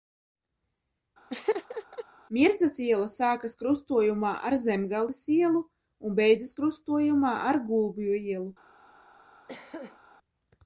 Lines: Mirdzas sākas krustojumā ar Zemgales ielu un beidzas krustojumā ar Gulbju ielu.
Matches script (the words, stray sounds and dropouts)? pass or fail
fail